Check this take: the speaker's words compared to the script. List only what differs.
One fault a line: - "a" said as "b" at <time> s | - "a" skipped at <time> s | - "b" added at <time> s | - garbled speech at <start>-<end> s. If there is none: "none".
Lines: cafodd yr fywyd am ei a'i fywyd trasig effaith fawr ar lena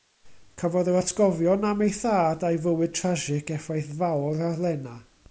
- "fywyd" said as "atgofion" at 1.0 s
- "thad" added at 2.0 s